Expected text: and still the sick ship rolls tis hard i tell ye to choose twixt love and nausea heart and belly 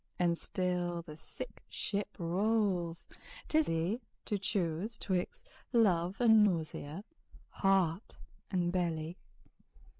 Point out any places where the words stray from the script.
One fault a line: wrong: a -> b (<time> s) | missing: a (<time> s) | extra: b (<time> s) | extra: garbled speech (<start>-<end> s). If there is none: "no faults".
missing: hard i tell (3.7 s)